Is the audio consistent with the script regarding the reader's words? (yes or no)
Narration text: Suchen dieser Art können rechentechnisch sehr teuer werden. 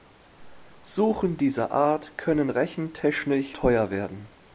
no